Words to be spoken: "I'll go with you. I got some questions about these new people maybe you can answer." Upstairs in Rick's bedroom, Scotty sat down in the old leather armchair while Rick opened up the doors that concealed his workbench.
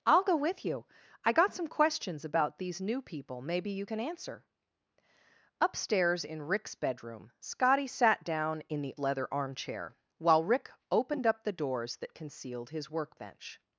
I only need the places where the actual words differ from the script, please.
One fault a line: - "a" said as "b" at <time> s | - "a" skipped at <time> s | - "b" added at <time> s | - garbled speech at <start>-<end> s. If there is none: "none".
- "old" skipped at 8.9 s